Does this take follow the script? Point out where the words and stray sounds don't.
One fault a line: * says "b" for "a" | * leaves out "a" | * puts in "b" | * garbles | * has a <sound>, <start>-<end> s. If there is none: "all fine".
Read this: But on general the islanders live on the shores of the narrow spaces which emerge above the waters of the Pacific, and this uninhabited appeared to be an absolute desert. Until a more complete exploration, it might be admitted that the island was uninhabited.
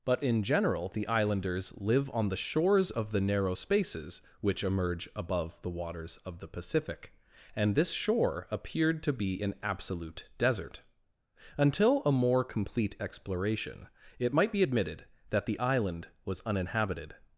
* says "in" for "on"
* says "shore" for "uninhabited"